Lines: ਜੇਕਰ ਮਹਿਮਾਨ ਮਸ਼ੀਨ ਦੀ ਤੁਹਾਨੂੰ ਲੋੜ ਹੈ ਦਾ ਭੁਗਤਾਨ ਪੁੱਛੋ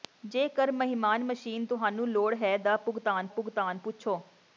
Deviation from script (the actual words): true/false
true